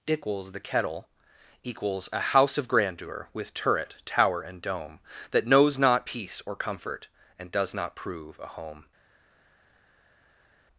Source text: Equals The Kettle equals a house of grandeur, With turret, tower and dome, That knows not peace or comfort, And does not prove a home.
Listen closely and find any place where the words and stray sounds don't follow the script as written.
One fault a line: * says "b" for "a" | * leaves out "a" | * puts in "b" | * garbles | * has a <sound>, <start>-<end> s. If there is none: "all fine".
all fine